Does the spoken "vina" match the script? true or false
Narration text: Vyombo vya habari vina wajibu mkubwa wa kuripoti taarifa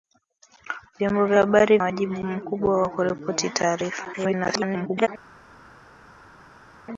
false